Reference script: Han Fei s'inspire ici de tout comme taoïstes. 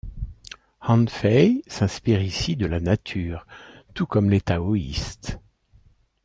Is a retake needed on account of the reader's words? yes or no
yes